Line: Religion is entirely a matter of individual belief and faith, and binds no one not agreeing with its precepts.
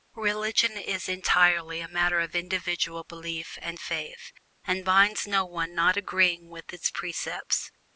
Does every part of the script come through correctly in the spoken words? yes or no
yes